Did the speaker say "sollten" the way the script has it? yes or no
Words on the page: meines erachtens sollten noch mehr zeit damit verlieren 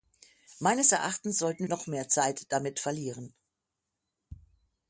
yes